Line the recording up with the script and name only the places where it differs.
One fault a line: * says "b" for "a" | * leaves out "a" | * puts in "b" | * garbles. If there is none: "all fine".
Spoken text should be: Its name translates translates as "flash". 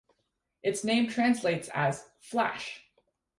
* leaves out "translates"